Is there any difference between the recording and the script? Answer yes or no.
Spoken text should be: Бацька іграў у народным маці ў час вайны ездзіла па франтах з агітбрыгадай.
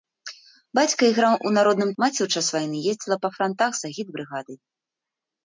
no